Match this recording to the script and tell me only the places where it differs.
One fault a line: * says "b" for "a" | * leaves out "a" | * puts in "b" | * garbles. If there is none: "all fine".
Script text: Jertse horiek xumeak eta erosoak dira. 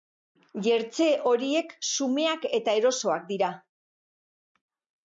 all fine